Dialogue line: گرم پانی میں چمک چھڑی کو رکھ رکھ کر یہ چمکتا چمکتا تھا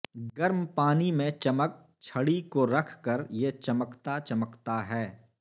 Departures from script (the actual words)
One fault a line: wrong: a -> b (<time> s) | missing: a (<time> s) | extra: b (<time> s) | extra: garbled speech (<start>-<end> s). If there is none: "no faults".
missing: رکھ (2.9 s)
wrong: تھا -> ہے (4.9 s)